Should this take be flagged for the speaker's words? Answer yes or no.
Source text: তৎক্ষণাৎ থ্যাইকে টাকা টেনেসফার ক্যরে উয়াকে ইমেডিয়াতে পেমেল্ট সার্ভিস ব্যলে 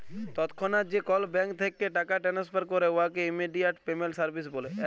yes